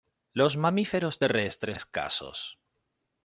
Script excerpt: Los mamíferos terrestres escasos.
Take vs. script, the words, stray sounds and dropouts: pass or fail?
pass